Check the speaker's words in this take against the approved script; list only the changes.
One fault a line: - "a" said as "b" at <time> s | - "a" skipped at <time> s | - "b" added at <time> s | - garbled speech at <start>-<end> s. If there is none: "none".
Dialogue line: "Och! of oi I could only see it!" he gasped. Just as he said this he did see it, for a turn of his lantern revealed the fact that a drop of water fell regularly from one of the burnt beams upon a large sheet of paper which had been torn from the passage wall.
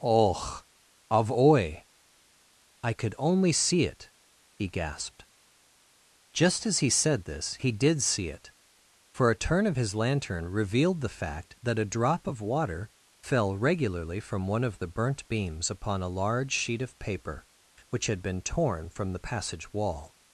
none